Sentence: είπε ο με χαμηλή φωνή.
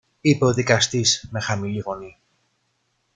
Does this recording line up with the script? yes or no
no